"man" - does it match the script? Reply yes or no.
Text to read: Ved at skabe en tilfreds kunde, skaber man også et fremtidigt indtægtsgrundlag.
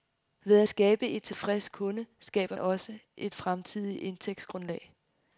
no